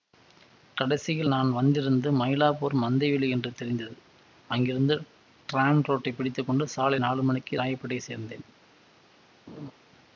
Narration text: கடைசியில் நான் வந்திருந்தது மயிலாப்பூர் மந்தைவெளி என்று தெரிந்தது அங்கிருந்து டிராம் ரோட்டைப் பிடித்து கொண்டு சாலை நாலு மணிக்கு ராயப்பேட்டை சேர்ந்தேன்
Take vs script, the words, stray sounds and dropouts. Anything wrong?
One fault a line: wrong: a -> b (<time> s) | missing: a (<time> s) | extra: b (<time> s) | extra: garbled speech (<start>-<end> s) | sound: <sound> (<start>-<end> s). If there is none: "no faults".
sound: laugh (9.5-9.7 s)